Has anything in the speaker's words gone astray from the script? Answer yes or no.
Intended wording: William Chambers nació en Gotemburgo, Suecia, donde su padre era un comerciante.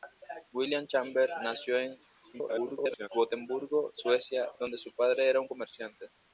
yes